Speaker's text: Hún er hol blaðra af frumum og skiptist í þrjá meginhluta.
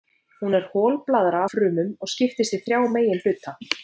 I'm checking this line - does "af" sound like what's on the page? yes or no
no